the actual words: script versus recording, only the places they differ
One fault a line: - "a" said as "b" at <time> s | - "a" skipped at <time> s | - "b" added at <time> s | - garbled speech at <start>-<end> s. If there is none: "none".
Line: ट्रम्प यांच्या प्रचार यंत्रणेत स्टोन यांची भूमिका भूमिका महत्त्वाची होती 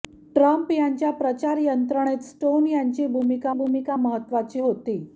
none